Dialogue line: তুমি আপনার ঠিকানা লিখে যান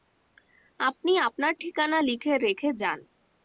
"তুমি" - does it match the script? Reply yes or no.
no